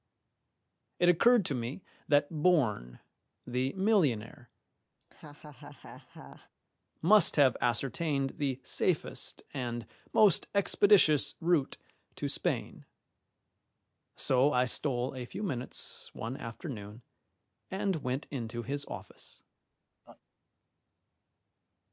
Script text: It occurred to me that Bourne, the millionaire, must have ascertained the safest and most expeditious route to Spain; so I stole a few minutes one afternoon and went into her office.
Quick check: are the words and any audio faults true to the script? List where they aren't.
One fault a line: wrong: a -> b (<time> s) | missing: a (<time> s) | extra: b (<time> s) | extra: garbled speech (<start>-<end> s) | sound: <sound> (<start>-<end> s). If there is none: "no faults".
sound: laugh (5.0-6.5 s)
wrong: her -> his (18.6 s)
sound: laugh (20.0-20.2 s)